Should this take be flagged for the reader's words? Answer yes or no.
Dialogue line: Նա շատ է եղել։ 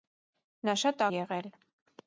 no